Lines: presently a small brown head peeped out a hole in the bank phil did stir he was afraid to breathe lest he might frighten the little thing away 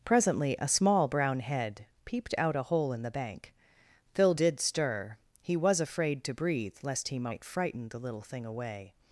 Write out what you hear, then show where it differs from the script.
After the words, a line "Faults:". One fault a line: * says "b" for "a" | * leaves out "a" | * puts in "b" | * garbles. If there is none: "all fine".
presently a small brown head peeped out a hole in the bank phil did stir he was afraid to breathe lest he might frighten the little thing away
Faults:
all fine